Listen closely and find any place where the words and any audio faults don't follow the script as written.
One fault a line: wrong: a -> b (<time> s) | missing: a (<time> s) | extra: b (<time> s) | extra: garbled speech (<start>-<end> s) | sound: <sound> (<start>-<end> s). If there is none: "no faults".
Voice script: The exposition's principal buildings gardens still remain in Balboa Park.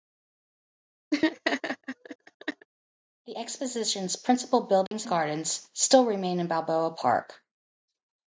sound: laugh (1.1-2.7 s)
sound: dropout (4.9-4.9 s)